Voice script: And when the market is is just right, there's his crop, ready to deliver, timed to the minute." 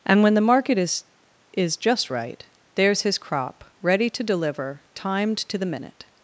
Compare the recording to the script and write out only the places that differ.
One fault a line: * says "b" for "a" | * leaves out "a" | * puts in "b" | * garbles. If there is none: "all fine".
all fine